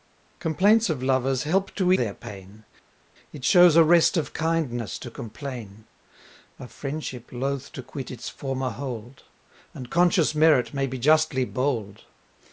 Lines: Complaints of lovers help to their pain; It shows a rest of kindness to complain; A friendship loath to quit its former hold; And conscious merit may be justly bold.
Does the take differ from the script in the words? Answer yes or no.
no